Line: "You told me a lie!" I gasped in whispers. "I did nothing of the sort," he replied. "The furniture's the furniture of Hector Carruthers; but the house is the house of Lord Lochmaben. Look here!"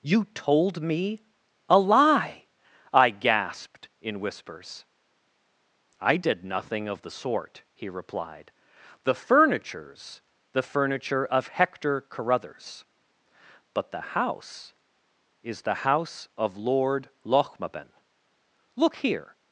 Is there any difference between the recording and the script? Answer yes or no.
no